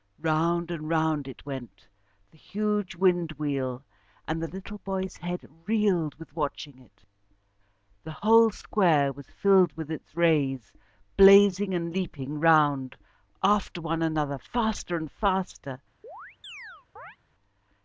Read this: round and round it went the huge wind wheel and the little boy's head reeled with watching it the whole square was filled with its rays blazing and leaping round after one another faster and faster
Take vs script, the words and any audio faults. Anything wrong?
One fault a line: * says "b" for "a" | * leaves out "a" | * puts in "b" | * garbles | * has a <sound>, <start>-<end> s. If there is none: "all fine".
* has a chirp, 16.0-17.2 s